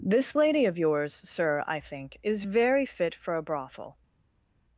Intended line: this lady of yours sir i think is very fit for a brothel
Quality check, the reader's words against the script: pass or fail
pass